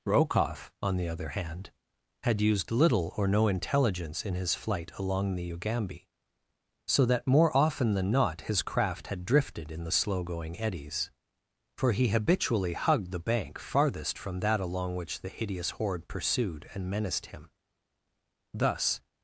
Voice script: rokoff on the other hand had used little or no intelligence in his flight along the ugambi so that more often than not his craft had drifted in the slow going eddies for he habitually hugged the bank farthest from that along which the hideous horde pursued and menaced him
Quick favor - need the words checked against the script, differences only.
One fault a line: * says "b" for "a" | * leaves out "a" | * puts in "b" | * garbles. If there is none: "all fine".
* puts in "thus"